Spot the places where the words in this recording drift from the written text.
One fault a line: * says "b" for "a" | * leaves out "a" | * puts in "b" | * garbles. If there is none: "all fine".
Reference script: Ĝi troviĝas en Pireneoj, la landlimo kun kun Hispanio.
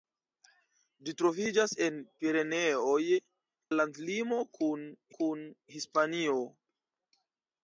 all fine